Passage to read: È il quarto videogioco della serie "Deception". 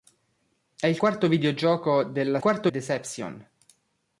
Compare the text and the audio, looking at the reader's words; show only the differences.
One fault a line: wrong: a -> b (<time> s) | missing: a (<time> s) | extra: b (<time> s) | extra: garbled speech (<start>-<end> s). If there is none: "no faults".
wrong: serie -> quarto (2.4 s)